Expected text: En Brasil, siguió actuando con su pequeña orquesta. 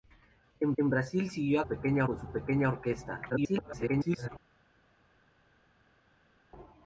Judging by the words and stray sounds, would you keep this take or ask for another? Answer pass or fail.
fail